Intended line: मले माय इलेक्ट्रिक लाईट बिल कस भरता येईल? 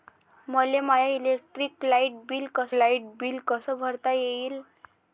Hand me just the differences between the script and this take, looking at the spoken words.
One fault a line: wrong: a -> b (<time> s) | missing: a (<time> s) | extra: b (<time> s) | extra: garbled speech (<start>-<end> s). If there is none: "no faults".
extra: लाईट बिल कस (2.7 s)